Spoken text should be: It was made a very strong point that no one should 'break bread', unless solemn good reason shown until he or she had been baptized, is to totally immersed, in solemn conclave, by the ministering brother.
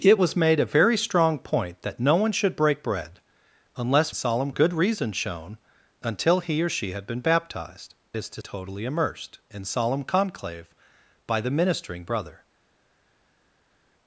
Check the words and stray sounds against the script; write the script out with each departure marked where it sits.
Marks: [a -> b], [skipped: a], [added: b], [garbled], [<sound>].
It was made a very strong point that no one should 'break bread', unless solemn good reason shown until he or she had been baptized, is to totally immersed, in solemn conclave, by the ministering brother.